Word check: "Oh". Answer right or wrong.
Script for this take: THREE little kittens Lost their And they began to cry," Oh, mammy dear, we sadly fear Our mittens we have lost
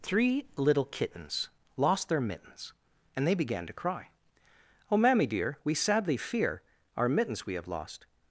right